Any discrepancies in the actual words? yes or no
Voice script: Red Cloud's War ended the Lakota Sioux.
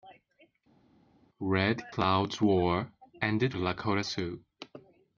no